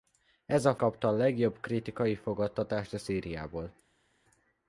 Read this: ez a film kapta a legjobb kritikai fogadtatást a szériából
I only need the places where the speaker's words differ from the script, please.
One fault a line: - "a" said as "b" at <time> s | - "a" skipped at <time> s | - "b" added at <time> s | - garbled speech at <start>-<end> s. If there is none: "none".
- "film" skipped at 0.8 s